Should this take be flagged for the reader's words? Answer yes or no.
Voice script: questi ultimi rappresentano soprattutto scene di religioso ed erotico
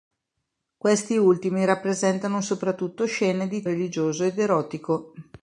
no